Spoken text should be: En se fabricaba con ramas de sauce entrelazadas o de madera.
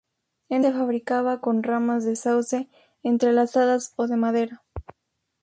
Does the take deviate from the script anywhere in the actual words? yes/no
no